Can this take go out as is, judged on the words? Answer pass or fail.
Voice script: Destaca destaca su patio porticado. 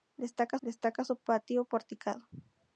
pass